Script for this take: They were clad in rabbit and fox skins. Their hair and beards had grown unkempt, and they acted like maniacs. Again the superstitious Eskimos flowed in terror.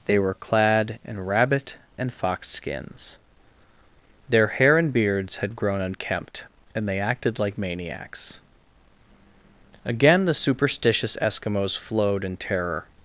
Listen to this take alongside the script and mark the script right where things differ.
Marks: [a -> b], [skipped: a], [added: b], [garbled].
They were clad in rabbit and fox skins. Their hair and beards had grown unkempt, and they acted like maniacs. Again the superstitious Eskimos flowed in terror.